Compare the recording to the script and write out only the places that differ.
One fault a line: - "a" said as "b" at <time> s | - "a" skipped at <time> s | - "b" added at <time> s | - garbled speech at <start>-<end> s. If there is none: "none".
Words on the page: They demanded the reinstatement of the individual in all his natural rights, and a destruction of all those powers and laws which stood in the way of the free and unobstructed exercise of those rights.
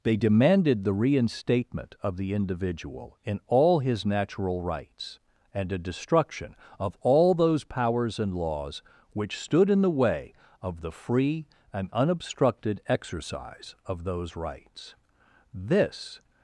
- "This" added at 15.5 s